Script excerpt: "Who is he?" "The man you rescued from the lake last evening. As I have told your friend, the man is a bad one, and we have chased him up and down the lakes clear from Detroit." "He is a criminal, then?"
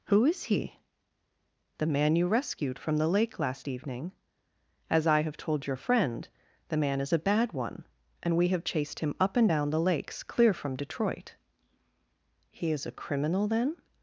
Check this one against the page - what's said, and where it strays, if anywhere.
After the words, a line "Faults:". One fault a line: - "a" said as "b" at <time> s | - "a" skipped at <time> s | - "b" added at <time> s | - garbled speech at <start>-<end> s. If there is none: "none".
"Who is he?" "The man you rescued from the lake last evening. As I have told your friend, the man is a bad one, and we have chased him up and down the lakes clear from Detroit." "He is a criminal, then?"
Faults:
none